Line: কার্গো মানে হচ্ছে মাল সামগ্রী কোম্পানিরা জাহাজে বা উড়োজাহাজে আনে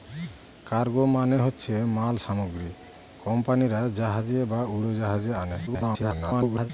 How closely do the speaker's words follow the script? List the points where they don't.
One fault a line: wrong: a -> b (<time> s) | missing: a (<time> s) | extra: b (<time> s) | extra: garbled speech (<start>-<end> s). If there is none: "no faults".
extra: garbled speech (5.7-6.7 s)